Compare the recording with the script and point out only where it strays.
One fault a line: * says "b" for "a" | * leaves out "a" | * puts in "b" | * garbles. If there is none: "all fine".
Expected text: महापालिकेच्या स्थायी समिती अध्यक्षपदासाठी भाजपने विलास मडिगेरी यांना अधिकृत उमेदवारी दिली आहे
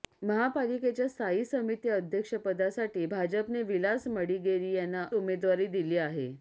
* leaves out "अधिकृत"